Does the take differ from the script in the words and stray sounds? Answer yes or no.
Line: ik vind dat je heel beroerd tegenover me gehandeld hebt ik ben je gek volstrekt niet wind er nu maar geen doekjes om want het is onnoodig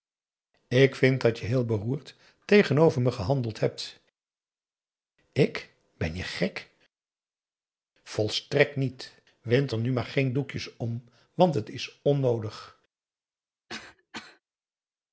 yes